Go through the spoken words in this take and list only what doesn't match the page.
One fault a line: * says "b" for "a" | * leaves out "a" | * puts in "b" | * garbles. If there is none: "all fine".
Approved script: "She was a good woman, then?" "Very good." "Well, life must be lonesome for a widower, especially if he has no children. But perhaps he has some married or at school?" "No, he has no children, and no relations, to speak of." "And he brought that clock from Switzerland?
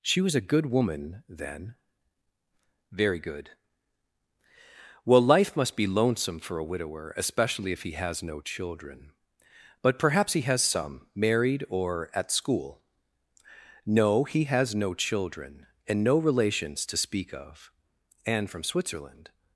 * leaves out "he brought that clock"